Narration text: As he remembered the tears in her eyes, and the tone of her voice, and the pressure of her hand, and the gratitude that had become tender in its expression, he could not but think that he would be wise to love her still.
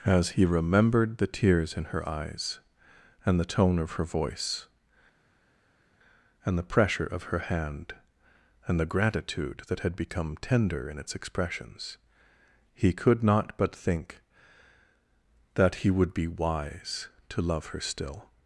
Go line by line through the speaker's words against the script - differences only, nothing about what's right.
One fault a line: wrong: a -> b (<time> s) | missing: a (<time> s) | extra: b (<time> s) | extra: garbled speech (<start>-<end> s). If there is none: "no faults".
wrong: expression -> expressions (11.2 s)